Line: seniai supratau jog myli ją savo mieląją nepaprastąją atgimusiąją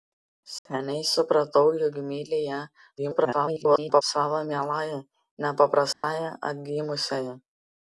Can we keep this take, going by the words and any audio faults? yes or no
no